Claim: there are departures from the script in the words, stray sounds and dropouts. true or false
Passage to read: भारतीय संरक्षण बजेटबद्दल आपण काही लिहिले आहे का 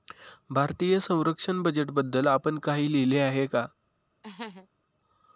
true